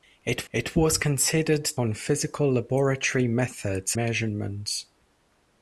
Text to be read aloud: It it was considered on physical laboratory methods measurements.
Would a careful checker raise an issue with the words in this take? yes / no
no